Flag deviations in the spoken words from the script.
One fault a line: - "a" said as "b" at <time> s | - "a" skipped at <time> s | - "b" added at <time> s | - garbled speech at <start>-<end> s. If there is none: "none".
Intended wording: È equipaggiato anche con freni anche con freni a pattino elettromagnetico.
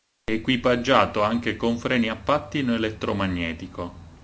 - "anche con freni" skipped at 2.1 s